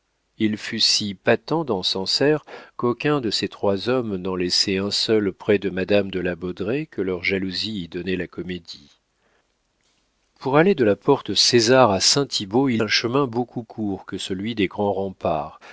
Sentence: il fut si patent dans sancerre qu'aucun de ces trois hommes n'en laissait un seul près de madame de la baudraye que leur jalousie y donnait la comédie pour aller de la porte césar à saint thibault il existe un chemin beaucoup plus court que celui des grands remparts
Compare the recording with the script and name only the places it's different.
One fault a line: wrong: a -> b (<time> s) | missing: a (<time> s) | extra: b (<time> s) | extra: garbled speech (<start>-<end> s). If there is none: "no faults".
missing: existe (12.8 s)
missing: plus (13.6 s)